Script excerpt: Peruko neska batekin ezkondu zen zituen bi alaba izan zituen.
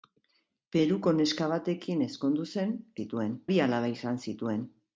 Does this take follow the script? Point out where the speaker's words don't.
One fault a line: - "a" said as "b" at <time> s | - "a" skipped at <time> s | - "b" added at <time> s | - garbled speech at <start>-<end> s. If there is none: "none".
none